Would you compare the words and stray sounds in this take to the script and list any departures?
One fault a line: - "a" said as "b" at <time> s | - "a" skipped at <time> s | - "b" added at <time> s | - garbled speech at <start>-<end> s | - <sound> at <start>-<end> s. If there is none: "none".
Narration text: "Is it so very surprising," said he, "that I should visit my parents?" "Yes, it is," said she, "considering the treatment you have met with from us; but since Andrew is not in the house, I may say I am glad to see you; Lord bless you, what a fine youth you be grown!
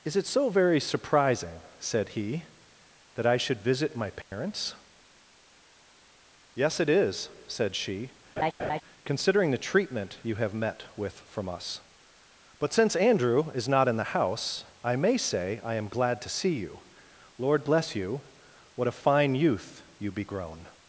- dropout at 4.2-4.3 s
- laugh at 8.4-8.8 s